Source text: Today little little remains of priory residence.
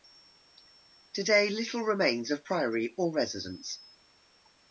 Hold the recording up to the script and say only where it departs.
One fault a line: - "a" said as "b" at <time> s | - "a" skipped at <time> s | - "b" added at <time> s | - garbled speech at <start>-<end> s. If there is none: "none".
- "little" skipped at 1.8 s
- "or" added at 3.0 s